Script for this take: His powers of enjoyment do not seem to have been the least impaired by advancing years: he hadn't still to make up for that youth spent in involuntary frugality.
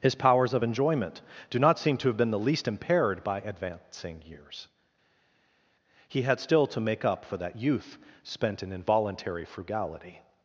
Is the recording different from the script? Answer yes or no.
yes